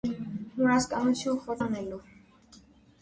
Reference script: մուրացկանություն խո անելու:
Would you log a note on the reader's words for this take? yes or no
no